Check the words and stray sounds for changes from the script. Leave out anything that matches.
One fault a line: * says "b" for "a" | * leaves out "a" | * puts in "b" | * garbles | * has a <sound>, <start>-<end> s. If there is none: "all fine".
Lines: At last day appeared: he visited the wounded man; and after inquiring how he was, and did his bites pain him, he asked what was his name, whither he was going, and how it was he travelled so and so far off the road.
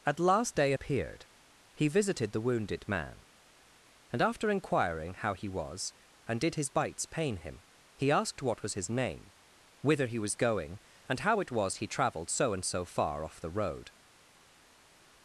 all fine